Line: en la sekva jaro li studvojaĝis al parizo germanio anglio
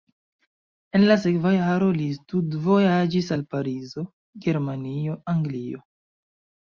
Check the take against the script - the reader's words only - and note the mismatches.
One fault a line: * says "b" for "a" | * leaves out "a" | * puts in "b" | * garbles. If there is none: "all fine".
all fine